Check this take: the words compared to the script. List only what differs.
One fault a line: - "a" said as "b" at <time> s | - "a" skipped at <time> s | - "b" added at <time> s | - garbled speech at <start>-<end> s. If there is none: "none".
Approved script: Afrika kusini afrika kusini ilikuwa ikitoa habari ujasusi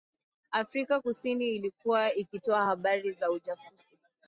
- "afrika kusini" skipped at 1.5 s
- "za" added at 3.1 s